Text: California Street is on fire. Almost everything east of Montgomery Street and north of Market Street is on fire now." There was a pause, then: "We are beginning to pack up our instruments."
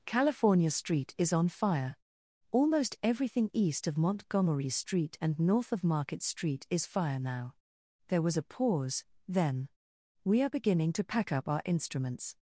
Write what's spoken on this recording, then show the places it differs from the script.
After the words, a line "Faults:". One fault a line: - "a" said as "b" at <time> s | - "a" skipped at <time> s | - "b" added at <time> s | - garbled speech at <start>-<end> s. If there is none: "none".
California Street is on fire. Almost everything east of Montgomery Street and north of Market Street is fire now." There was a pause, then: "We are beginning to pack up our instruments."
Faults:
- "on" skipped at 6.8 s